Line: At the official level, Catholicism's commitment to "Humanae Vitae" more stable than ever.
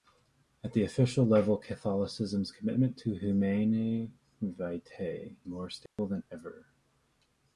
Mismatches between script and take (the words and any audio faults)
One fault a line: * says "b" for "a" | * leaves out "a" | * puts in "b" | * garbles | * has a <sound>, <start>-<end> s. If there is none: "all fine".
* has a dropout, 5.9-6.0 s